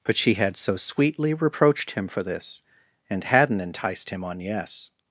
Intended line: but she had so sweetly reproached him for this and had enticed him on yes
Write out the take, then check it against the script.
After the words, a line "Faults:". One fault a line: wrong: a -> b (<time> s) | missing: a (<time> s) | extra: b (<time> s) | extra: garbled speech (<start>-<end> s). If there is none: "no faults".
but she had so sweetly reproached him for this and hadn't enticed him on yes
Faults:
wrong: had -> hadn't (3.2 s)